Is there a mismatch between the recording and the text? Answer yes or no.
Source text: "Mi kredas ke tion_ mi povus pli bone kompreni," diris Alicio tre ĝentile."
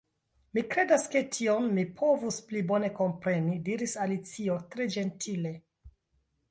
no